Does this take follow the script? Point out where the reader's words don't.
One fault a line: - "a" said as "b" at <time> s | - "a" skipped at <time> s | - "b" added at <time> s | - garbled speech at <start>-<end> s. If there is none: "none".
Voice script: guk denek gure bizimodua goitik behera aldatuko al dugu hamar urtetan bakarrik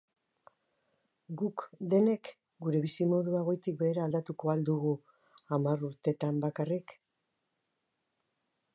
none